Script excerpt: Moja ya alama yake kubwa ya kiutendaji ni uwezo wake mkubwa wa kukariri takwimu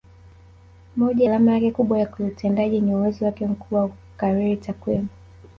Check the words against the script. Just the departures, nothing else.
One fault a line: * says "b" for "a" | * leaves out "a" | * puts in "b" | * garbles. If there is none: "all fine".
* leaves out "ya"